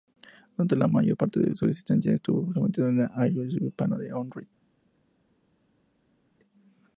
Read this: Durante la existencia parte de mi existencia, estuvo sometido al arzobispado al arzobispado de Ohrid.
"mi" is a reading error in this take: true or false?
true